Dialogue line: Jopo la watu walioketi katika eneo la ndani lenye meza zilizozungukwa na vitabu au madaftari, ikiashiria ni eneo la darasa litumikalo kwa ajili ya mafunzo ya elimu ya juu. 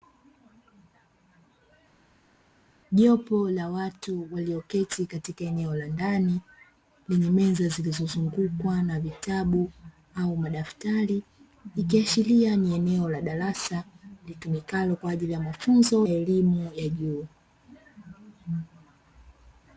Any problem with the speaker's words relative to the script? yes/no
yes